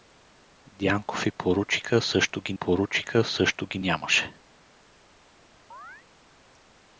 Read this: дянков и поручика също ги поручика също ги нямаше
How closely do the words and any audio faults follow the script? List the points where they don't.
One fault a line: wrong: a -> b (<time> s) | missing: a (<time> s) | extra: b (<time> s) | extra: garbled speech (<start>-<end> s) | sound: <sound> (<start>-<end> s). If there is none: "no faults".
sound: chirp (5.7-6.1 s)